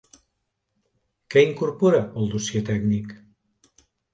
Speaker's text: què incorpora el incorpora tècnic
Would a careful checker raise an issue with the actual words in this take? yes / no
yes